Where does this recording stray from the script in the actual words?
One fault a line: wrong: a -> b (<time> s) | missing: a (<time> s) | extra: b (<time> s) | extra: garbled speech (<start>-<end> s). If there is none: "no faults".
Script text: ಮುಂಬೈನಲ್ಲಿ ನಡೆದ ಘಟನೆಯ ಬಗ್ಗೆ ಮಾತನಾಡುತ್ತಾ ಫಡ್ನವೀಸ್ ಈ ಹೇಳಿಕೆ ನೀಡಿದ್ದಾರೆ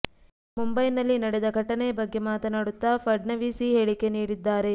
no faults